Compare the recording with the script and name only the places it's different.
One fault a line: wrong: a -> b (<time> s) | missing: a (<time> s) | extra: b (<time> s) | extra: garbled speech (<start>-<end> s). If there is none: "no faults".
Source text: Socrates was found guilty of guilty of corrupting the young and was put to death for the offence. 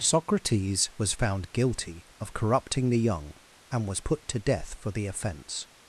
missing: guilty of (2.3 s)